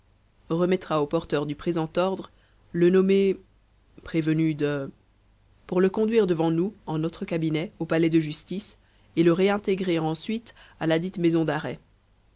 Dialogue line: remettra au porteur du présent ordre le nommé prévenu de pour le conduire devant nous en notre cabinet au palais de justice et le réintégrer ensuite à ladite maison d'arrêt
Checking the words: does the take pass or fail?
pass